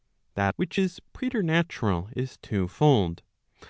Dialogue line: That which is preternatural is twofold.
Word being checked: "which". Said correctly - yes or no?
yes